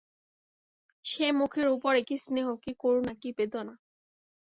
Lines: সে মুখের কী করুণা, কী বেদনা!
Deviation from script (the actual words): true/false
true